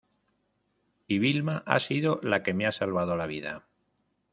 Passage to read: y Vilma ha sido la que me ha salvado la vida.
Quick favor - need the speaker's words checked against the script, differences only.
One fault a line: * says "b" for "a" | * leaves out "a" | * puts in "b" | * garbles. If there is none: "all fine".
all fine